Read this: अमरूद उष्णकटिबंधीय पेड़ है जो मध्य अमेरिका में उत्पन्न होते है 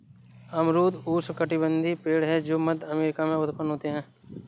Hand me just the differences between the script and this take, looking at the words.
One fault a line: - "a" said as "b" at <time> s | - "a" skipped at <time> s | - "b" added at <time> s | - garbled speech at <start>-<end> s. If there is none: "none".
none